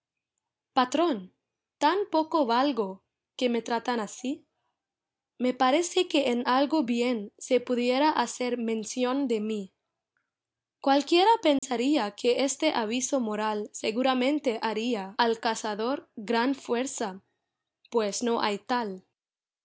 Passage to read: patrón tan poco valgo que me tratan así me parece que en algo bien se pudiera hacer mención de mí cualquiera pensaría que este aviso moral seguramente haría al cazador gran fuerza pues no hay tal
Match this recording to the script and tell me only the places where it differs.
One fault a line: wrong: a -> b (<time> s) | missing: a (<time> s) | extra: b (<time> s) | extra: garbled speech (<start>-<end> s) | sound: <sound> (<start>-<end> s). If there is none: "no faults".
sound: dropout (11.6-11.6 s)